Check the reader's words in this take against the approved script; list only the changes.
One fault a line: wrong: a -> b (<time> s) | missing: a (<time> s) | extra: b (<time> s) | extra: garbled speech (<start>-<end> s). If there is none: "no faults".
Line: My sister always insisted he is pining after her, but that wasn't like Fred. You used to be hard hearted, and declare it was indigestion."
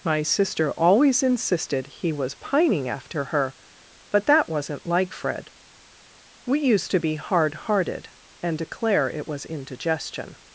wrong: is -> was (2.1 s)
wrong: You -> We (6.5 s)